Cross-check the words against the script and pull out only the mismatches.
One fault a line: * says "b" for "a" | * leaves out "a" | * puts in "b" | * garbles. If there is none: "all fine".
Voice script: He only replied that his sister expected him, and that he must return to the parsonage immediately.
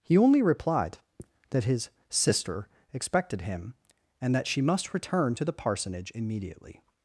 * says "she" for "he"